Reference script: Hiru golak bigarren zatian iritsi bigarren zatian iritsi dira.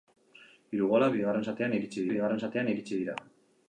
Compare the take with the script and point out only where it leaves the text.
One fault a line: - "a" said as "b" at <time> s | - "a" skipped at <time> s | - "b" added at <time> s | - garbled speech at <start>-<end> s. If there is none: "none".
none